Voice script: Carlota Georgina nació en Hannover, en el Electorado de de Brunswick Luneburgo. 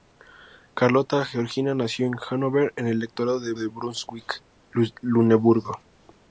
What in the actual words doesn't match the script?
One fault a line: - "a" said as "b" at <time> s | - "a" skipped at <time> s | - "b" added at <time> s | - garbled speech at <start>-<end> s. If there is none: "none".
none